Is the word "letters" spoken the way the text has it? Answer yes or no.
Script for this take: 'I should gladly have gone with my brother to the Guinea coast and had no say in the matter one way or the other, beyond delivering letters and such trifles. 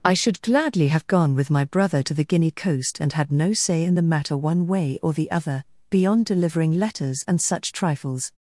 yes